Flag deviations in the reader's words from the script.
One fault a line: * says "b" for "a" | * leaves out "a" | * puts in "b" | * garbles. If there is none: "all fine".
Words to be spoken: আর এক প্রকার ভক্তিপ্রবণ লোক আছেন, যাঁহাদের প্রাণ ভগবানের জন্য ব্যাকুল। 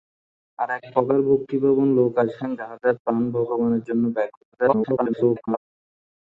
* garbles